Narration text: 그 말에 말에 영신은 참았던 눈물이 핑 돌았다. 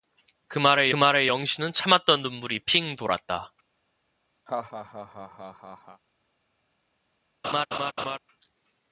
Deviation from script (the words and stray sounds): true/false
true